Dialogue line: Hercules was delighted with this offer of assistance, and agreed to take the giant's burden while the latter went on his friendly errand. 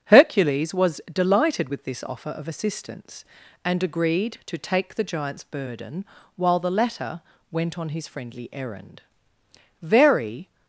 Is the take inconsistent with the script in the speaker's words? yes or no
yes